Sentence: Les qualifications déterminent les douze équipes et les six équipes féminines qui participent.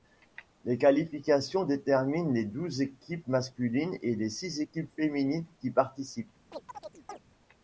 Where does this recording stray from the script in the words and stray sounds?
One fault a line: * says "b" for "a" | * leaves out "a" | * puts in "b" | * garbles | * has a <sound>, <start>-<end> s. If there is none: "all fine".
* puts in "masculines"
* has a chirp, 6.5-7.2 s